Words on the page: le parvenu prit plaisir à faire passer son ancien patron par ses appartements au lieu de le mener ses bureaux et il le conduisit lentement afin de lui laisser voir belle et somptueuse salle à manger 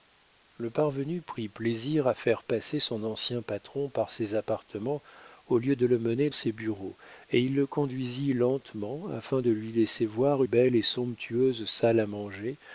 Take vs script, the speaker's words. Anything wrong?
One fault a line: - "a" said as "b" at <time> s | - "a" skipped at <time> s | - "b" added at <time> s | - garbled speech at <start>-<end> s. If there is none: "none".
none